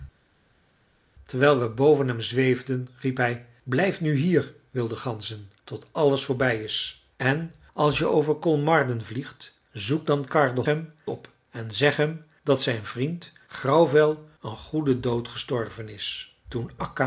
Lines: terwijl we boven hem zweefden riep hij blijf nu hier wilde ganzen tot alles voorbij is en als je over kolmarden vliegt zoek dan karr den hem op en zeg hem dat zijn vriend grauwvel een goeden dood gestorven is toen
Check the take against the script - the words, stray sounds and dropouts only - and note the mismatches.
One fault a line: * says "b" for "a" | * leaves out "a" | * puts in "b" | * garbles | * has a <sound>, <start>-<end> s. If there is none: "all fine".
all fine